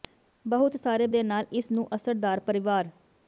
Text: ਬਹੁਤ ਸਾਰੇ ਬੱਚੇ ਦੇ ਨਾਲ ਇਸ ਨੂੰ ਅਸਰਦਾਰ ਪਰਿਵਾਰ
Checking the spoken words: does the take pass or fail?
fail